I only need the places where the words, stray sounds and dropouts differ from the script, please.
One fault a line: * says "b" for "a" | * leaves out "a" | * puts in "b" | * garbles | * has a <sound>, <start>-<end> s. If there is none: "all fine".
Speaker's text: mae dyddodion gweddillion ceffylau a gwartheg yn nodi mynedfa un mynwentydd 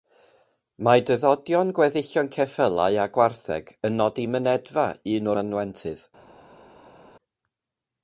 all fine